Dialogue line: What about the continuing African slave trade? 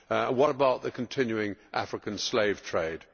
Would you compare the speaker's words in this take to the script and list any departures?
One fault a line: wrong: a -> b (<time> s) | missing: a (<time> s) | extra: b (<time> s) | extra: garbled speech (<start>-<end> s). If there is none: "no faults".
no faults